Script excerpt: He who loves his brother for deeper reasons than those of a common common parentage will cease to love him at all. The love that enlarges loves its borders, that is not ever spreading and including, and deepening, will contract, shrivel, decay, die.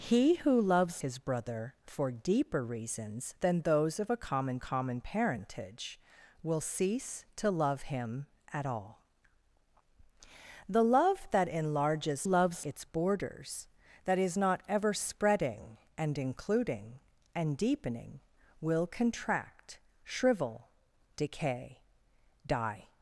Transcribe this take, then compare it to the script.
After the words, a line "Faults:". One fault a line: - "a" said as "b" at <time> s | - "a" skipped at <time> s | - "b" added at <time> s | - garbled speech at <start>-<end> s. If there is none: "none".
He who loves his brother for deeper reasons than those of a common common parentage will cease to love him at all. The love that enlarges loves its borders, that is not ever spreading and including, and deepening, will contract, shrivel, decay, die.
Faults:
none